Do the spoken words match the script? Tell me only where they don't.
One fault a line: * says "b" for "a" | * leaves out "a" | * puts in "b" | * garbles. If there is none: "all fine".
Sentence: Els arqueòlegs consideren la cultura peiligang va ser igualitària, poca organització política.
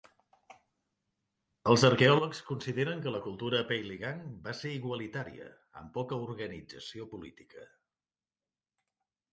* puts in "que"
* puts in "amb"